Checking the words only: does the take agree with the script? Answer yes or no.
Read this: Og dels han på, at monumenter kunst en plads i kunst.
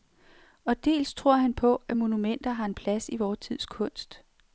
no